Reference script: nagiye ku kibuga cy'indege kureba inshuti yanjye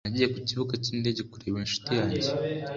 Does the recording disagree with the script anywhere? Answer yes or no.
no